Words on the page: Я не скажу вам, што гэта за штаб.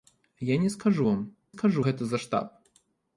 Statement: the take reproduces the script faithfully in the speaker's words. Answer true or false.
false